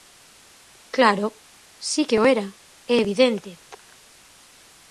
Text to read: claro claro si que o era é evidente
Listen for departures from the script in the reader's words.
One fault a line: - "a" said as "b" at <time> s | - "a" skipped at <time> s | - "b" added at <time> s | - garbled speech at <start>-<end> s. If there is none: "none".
- "claro" skipped at 1.3 s